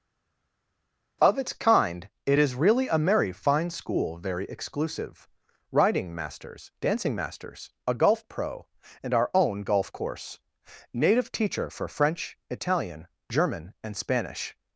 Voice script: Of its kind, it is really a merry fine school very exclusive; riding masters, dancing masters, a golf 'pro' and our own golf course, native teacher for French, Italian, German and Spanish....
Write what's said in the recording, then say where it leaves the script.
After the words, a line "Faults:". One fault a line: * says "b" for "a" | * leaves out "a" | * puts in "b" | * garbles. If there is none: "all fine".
Of its kind, it is really a merry fine school very exclusive; riding masters, dancing masters, a golf 'pro' and our own golf course, native teacher for French, Italian, German and Spanish....
Faults:
all fine